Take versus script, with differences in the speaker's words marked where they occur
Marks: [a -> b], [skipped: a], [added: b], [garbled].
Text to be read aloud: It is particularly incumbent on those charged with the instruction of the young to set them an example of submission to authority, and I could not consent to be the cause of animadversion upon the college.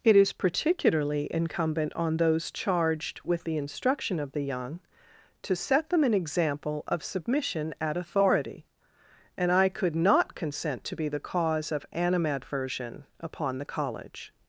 It is particularly incumbent on those charged with the instruction of the young to set them an example of submission [to -> at] authority, and I could not consent to be the cause of animadversion upon the college.